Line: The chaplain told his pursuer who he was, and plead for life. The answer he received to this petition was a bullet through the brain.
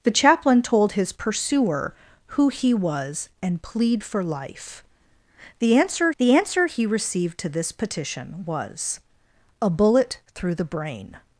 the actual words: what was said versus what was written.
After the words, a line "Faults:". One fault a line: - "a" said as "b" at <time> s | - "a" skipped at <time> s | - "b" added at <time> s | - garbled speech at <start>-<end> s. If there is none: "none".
The chaplain told his pursuer who he was, and plead for life. The answer the answer he received to this petition was a bullet through the brain.
Faults:
- "the answer" added at 6.2 s